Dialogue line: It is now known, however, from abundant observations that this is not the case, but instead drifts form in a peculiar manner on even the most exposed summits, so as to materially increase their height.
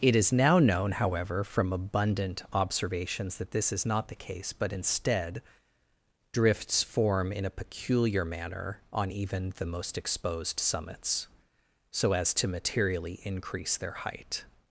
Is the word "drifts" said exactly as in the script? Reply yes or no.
yes